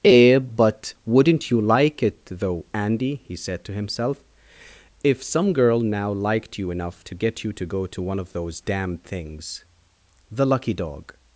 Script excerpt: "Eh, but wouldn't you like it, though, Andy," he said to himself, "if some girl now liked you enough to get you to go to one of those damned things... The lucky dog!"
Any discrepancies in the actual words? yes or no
no